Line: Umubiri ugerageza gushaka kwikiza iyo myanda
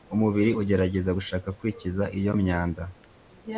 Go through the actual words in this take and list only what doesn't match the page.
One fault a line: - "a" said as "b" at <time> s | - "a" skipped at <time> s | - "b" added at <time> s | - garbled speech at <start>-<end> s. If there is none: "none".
none